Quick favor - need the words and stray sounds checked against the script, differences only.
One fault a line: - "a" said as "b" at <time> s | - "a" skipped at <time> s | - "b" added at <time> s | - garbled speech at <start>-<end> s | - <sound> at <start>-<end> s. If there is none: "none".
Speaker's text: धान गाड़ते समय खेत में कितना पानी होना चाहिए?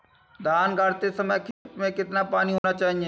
- dropout at 1.5-1.7 s
- dropout at 2.6-2.6 s